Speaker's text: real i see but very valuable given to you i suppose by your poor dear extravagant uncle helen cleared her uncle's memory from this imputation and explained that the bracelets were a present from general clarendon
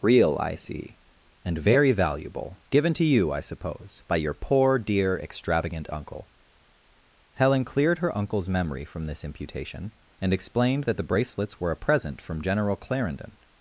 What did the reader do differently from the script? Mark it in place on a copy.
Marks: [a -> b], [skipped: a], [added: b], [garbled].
real i see [but -> and] very valuable given to you i suppose by your poor dear extravagant uncle helen cleared her uncle's memory from this imputation and explained that the bracelets were a present from general clarendon